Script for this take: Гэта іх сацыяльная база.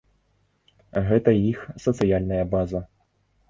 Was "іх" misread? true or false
false